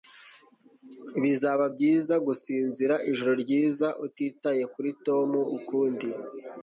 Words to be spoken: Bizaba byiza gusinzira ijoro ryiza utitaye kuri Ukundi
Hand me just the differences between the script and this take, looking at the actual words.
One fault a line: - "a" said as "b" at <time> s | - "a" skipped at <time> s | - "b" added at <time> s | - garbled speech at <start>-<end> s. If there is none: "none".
- "Tom" added at 5.0 s